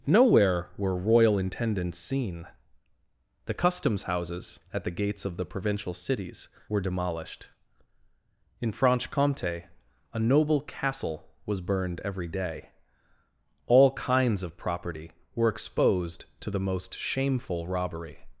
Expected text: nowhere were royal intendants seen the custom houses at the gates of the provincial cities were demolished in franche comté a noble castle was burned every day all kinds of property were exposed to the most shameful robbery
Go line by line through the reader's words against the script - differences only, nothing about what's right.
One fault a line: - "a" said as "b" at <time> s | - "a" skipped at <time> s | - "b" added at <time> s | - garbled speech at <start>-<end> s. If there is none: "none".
- "custom" said as "customs" at 3.5 s